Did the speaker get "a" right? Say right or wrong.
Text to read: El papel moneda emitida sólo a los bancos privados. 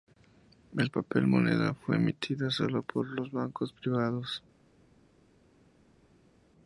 wrong